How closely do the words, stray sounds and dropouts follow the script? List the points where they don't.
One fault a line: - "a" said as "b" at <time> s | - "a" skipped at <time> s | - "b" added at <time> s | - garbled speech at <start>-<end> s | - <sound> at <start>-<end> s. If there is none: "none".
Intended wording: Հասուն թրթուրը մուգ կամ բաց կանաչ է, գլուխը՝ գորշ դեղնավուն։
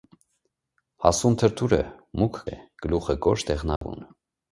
- "կամ բաց կանաչ" skipped at 2.4 s
- dropout at 3.8-3.8 s